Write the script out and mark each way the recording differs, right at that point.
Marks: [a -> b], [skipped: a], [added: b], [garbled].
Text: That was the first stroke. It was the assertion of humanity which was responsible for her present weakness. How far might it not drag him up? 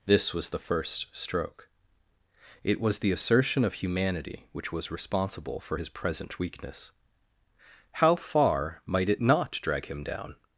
[That -> This] was the first stroke. It was the assertion of humanity which was responsible for [her -> his] present weakness. How far might it not drag him [up? -> down]